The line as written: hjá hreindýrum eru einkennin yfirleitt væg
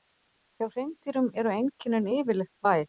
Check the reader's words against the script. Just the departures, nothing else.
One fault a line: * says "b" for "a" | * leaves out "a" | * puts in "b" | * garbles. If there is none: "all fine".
all fine